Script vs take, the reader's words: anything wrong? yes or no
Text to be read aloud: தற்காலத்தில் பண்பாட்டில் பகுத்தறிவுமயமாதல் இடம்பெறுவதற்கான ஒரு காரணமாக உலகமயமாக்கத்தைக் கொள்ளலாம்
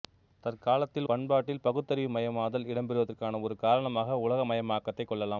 no